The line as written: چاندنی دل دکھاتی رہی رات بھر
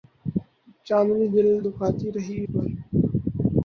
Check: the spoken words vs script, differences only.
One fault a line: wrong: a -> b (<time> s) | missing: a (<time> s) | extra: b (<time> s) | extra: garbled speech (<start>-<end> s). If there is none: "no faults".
missing: رات (2.4 s)